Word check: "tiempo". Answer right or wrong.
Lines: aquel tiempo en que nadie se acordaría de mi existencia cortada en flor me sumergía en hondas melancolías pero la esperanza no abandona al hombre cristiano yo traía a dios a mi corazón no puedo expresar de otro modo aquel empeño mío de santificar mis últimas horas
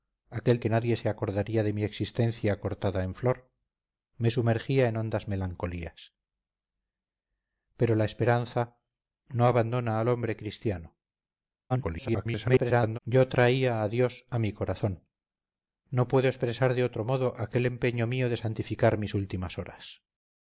wrong